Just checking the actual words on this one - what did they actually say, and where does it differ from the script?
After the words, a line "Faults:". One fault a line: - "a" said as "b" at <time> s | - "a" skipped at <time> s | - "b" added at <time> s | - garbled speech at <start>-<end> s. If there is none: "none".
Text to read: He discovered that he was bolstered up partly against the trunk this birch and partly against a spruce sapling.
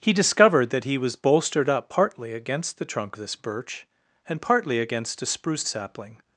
He discovered that he was bolstered up partly against the trunk this birch and partly against a spruce sapling.
Faults:
none